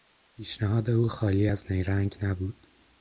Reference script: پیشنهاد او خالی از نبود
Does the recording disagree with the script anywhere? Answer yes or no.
yes